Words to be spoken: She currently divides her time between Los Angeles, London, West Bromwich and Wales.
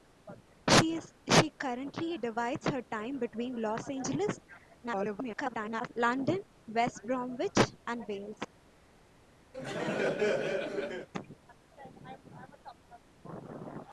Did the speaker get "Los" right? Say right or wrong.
right